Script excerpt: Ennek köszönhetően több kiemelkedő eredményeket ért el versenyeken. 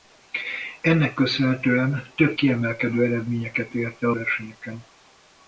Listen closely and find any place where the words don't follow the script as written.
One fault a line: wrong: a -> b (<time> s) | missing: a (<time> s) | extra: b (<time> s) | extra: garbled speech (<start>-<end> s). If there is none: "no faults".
no faults